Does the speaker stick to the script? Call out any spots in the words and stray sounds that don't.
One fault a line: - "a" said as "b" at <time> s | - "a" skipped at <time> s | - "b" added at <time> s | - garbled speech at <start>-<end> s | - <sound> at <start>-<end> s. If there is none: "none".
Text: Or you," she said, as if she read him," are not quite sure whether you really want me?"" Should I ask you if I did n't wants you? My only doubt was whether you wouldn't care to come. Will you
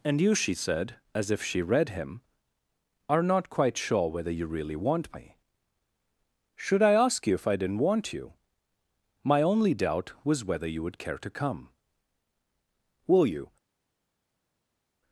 - "Or" said as "And" at 0.0 s
- "wants" said as "want" at 7.8 s
- "wouldn't" said as "would" at 10.8 s